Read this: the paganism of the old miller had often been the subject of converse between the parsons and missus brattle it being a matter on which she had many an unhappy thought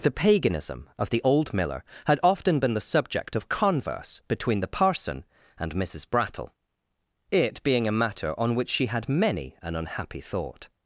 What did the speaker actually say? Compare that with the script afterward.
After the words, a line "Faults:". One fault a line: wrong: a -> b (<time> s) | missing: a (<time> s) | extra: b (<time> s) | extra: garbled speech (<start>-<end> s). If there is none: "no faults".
the paganism of the old miller had often been the subject of converse between the parson and missus brattle it being a matter on which she had many an unhappy thought
Faults:
wrong: parsons -> parson (4.7 s)